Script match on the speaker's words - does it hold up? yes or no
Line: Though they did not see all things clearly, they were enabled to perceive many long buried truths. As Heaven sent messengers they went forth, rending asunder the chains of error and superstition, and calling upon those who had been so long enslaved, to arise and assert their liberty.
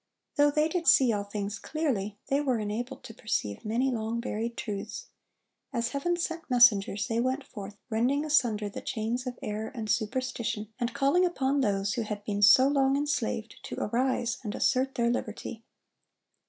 no